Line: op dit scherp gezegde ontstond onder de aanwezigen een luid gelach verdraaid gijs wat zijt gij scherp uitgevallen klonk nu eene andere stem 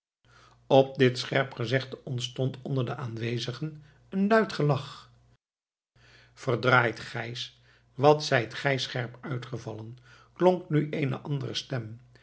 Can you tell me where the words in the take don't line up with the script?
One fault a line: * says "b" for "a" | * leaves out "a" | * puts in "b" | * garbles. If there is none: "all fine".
all fine